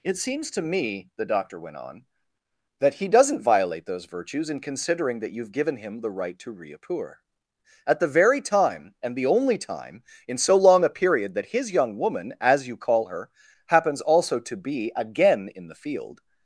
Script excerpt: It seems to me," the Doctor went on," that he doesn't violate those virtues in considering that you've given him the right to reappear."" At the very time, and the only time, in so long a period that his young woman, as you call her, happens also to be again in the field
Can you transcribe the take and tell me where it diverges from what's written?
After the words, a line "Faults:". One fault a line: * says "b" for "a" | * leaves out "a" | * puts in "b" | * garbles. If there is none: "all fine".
It seems to me," the Doctor went on," that he doesn't violate those virtues in considering that you've given him the right to reappear."" At the very time, and the only time, in so long a period that his young woman, as you call her, happens also to be again in the field
Faults:
all fine